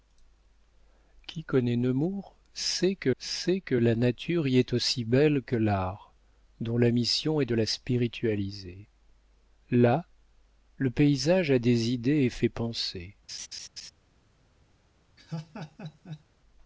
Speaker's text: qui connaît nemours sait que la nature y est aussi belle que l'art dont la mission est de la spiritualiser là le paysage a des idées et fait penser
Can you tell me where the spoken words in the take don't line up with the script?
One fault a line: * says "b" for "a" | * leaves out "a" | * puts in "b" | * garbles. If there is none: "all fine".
* puts in "sait que"